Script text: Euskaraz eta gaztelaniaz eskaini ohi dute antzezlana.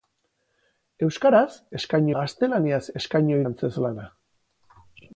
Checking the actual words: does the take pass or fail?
fail